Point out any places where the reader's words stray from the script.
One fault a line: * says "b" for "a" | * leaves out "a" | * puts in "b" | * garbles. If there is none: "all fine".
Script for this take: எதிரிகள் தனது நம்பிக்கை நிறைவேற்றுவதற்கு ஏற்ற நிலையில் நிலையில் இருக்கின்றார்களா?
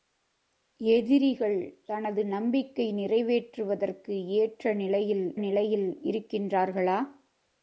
all fine